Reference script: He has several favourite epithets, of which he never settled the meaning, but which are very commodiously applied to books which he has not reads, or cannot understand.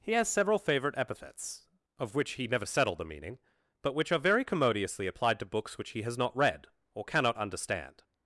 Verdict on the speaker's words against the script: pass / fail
fail